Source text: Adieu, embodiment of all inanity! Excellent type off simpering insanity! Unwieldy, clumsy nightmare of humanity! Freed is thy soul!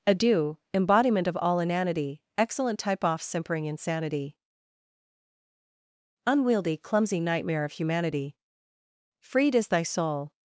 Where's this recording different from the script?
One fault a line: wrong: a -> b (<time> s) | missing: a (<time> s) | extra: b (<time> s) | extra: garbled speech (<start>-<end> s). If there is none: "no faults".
no faults